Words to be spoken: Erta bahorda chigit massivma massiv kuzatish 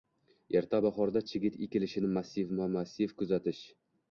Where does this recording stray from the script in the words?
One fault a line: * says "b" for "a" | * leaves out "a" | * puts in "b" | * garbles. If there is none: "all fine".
* puts in "ekilishini"